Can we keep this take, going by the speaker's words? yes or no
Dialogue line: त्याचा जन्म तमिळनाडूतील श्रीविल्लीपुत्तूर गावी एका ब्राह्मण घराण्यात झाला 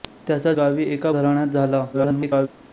no